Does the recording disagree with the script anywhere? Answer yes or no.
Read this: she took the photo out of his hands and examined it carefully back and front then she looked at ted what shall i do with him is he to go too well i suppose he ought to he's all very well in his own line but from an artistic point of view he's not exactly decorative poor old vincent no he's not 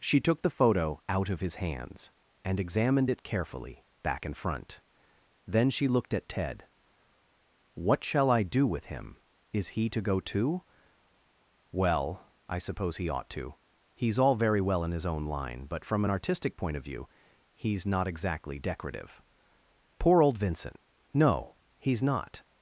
no